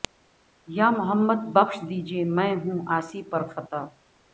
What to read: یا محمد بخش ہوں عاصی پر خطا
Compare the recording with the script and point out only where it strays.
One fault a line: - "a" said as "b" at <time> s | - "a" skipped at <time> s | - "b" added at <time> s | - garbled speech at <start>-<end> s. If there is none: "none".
- "دیجئے میں" added at 1.9 s